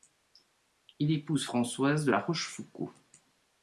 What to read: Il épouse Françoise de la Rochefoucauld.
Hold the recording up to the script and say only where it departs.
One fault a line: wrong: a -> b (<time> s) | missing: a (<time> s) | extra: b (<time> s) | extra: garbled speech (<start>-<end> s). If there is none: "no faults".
no faults